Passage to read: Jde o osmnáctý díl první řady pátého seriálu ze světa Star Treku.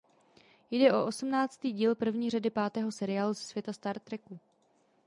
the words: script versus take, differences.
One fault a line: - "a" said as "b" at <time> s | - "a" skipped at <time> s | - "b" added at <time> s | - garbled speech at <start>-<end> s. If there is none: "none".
none